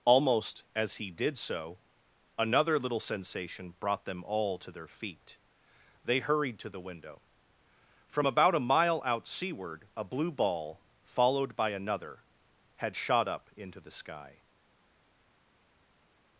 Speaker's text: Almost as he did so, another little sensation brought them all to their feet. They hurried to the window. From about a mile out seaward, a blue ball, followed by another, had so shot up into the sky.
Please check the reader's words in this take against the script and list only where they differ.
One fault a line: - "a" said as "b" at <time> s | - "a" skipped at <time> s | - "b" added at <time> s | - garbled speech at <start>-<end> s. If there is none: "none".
- "so" skipped at 12.9 s